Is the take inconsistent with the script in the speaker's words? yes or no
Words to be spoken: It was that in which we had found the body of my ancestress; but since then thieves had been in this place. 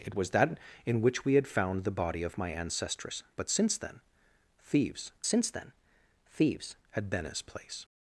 yes